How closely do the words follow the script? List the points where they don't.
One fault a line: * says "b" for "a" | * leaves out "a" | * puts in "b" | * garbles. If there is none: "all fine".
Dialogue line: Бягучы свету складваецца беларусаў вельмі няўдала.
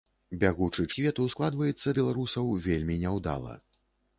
all fine